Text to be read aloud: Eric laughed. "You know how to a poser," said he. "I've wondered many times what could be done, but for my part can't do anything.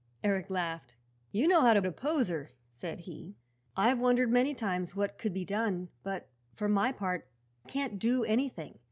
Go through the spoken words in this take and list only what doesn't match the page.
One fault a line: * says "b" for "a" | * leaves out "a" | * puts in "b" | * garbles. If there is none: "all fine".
all fine